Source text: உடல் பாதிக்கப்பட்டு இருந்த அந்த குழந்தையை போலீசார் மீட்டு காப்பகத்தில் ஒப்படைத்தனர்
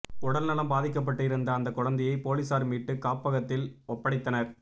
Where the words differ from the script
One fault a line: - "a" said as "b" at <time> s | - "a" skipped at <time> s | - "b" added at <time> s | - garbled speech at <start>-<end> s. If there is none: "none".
- "நலம்" added at 0.5 s